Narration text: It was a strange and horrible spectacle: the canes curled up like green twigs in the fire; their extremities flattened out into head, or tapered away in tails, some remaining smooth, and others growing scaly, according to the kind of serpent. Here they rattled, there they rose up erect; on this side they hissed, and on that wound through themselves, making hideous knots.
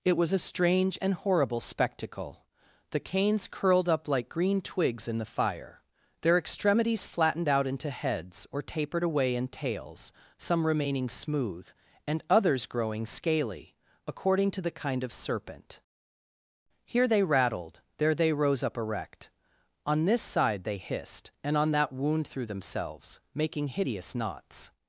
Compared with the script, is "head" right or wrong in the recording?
wrong